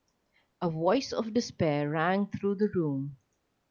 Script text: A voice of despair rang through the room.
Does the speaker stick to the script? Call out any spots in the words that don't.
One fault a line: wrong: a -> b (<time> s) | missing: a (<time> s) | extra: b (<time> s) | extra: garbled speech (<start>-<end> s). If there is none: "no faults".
no faults